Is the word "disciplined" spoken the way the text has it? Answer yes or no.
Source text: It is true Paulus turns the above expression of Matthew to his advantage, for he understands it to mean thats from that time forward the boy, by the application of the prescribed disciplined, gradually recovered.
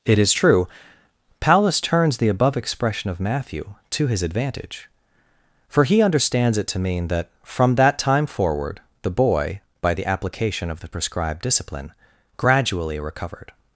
no